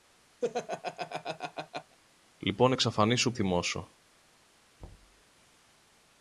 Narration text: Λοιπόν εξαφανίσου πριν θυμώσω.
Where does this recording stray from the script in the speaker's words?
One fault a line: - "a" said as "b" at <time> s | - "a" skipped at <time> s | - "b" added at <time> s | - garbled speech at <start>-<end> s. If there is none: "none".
- "πριν" skipped at 3.3 s